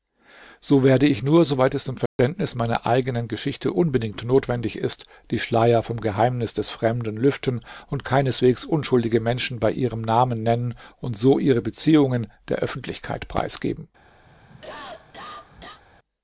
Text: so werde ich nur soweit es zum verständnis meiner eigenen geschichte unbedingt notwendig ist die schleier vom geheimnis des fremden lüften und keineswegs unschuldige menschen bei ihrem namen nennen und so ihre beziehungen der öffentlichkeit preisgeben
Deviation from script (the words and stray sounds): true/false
true